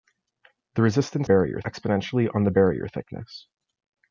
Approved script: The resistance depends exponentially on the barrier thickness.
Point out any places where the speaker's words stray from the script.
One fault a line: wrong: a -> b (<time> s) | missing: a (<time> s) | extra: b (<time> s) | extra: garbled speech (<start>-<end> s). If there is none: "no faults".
wrong: depends -> barrier (1.2 s)